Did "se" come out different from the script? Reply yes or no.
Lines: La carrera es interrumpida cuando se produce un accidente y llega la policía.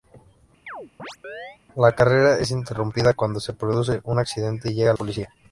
no